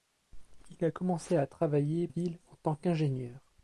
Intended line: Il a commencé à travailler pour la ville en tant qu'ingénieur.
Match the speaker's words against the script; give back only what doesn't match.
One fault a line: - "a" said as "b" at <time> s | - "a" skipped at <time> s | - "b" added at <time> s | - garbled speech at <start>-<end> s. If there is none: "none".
- "pour la" skipped at 2.1 s